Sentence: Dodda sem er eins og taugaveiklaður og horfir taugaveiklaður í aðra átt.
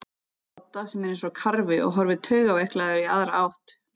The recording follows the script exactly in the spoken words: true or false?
false